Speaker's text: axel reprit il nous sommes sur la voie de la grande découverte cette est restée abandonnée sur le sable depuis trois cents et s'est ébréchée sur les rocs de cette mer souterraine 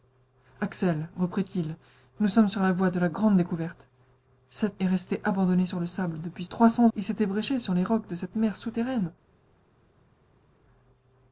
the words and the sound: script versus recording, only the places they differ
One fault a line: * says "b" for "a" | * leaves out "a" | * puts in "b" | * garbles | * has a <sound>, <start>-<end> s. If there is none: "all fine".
all fine